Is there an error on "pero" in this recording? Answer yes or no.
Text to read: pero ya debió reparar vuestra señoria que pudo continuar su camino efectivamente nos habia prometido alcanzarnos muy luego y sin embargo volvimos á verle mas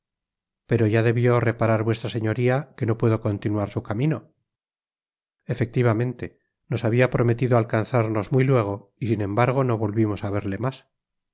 no